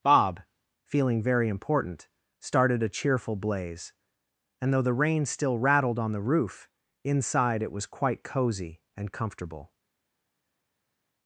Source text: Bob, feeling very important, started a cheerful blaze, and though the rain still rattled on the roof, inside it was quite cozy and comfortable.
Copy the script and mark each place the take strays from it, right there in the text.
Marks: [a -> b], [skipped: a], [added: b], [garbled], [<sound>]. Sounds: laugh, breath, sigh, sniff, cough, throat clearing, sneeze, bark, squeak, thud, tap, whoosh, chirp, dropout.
Bob, feeling very important, started a cheerful blaze, and though the rain still rattled on the roof, inside it was quite cozy and comfortable.